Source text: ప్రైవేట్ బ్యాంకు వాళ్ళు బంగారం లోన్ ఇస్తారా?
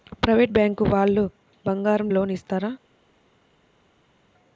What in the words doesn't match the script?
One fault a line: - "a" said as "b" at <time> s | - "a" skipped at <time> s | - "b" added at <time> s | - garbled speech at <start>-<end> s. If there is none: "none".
none